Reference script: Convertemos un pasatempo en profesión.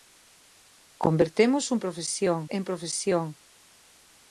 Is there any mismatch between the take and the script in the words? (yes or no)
yes